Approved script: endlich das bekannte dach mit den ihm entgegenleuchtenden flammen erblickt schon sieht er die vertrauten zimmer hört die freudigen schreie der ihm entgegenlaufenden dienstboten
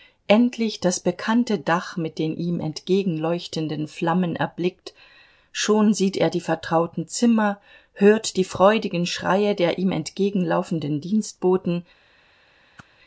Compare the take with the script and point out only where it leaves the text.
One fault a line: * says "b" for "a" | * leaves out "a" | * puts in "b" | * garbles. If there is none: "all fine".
all fine